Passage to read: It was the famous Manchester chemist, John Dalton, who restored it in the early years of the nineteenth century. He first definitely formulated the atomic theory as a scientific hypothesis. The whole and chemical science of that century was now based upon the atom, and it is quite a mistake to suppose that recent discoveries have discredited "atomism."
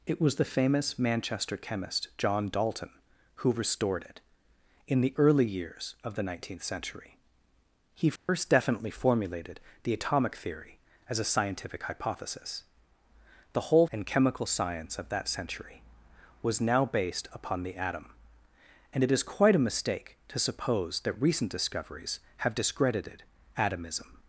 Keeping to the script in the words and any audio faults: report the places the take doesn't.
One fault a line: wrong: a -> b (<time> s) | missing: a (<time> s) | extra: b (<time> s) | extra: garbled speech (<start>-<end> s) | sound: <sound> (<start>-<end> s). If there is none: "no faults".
sound: dropout (8.2-8.3 s)